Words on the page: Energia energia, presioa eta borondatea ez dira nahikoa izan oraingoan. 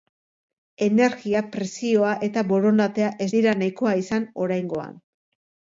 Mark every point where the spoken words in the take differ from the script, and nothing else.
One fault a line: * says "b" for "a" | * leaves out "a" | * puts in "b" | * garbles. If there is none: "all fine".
* leaves out "energia"